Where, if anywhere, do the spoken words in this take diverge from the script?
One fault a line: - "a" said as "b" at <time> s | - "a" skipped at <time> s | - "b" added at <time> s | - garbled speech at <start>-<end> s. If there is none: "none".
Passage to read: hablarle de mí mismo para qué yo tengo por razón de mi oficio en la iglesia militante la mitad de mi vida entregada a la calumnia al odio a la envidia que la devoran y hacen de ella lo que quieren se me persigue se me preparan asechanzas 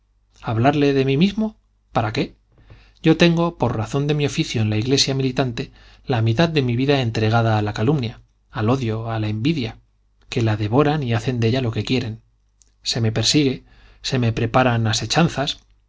none